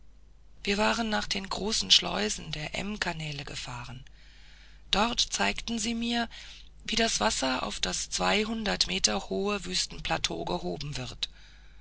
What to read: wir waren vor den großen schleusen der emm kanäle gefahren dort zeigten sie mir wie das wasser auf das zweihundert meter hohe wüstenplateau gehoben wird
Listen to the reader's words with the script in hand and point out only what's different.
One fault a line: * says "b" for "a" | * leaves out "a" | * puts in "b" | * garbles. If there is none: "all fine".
* says "nach" for "vor"